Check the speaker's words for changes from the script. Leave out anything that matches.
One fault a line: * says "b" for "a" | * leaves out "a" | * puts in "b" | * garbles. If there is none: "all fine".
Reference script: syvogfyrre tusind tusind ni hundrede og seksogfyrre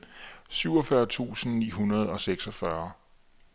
* leaves out "tusind"